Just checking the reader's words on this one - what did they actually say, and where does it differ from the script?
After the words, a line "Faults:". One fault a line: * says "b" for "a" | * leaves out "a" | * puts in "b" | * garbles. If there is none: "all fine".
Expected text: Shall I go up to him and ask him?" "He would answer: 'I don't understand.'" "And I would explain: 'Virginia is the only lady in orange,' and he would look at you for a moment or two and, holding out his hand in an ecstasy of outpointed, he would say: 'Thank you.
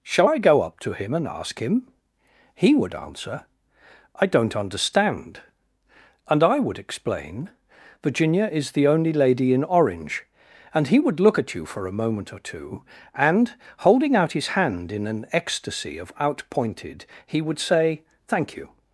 Shall I go up to him and ask him?" "He would answer: 'I don't understand.'" "And I would explain: 'Virginia is the only lady in orange,' and he would look at you for a moment or two and, holding out his hand in an ecstasy of outpointed, he would say: 'Thank you.
Faults:
all fine